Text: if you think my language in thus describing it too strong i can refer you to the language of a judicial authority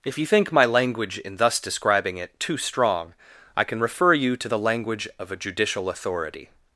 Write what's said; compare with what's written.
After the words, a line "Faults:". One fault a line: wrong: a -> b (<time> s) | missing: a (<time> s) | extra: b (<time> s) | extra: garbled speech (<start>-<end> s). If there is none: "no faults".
if you think my language in thus describing it too strong i can refer you to the language of a judicial authority
Faults:
no faults